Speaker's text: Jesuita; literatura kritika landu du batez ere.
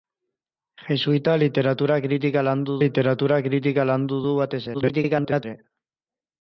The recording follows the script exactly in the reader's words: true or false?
false